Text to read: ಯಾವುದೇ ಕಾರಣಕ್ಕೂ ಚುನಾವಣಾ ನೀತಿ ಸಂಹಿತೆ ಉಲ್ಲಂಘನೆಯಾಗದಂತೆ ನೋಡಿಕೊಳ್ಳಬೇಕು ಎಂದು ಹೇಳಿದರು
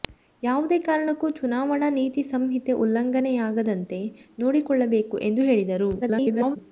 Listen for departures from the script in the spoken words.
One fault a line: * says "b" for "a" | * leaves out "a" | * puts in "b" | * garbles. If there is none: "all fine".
* garbles